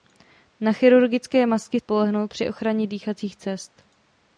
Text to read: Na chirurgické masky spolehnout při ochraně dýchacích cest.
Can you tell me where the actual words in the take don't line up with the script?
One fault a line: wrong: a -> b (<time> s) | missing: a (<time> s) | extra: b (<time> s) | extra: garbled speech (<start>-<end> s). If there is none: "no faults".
no faults